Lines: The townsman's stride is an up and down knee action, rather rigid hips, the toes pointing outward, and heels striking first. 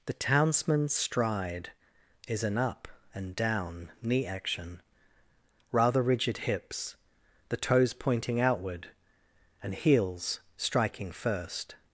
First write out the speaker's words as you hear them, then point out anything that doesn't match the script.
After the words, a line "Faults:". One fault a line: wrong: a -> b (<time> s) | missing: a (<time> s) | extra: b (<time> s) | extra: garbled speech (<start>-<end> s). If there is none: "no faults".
The townsman's stride is an up and down knee action, rather rigid hips, the toes pointing outward, and heels striking first.
Faults:
no faults